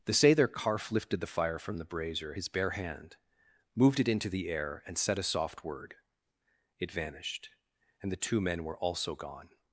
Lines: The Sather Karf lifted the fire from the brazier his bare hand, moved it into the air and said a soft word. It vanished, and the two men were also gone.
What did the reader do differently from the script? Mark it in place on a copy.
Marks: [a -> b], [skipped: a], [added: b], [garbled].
The Sather Karf lifted the fire from the brazier his bare hand, moved it into the air and said a soft word. It vanished, and the two men were also gone.